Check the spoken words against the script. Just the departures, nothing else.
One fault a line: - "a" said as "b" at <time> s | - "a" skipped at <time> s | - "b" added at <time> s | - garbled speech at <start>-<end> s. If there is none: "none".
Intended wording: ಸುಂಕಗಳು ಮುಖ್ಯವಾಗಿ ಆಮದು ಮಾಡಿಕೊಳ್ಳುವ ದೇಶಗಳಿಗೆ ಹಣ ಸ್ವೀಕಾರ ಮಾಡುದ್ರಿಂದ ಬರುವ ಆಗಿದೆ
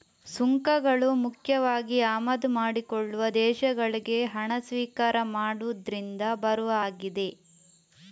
none